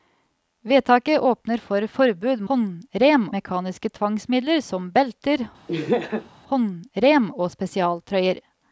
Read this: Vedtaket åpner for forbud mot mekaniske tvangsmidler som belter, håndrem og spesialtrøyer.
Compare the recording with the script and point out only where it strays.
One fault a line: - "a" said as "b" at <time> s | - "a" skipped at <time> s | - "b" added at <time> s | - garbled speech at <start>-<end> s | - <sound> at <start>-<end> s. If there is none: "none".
- "mot" said as "håndrem" at 2.5 s
- laugh at 5.7-6.3 s